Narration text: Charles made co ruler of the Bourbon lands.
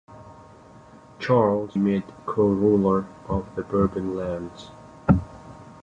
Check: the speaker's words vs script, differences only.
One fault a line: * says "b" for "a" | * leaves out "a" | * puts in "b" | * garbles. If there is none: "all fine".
all fine